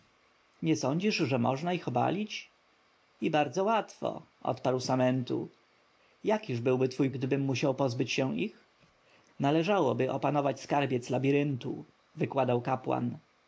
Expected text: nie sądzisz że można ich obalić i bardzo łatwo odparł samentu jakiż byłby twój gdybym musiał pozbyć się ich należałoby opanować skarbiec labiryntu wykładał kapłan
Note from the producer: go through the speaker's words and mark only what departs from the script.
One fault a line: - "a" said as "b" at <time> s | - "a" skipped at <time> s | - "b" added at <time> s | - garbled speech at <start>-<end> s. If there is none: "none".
none